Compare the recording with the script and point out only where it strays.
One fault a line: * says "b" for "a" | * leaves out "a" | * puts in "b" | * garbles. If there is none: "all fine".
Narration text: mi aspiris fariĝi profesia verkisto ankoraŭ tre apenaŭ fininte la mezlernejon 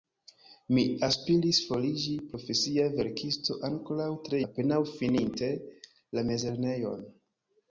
all fine